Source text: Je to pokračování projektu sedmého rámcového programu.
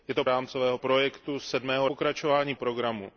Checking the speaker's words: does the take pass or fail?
fail